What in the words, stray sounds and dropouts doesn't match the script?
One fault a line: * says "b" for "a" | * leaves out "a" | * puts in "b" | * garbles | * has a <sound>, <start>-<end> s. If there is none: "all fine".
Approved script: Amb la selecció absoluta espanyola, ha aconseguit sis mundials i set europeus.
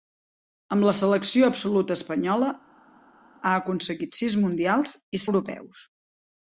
* leaves out "set"